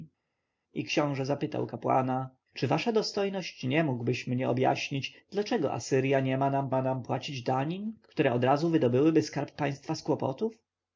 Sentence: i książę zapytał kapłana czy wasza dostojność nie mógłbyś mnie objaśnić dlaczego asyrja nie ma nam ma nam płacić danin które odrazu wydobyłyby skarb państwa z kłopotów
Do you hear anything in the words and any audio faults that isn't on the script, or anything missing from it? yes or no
no